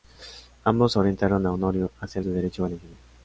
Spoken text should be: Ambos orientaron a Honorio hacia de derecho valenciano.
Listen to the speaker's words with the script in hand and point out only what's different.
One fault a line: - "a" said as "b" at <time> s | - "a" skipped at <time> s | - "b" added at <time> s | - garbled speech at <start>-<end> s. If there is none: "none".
none